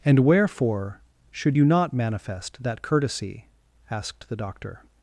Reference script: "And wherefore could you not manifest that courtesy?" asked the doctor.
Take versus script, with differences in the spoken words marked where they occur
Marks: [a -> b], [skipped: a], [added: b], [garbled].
"And wherefore [could -> should] you not manifest that courtesy?" asked the doctor.